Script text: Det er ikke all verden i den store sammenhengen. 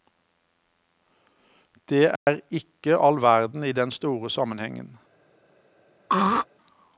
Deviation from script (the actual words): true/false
false